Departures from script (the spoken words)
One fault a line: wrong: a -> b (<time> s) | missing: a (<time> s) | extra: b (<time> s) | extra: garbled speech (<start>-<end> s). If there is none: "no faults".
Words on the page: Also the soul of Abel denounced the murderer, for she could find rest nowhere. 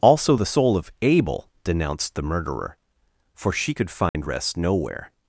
no faults